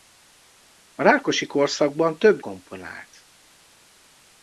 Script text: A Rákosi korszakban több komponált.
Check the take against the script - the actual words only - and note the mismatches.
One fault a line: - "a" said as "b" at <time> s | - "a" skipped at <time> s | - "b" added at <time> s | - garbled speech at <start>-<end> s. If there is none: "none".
none